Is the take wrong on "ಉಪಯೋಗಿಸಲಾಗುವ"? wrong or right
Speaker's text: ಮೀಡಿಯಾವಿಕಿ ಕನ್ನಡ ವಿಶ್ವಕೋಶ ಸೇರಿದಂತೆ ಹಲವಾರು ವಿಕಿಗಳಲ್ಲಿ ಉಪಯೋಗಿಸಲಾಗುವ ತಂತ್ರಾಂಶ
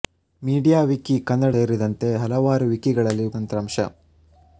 wrong